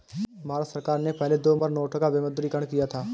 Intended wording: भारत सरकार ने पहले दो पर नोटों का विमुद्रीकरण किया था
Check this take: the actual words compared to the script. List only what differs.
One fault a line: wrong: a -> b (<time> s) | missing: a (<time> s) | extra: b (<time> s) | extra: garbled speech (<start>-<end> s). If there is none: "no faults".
no faults